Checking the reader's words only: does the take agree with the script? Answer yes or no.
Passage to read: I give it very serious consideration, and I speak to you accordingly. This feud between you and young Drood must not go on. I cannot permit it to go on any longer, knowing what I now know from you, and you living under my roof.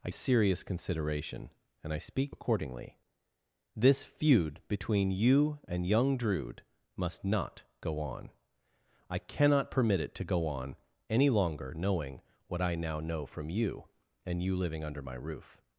no